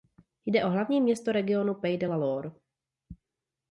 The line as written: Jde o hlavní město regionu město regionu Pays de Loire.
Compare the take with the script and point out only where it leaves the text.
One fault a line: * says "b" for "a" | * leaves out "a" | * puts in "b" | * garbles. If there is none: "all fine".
* leaves out "město regionu"
* puts in "la"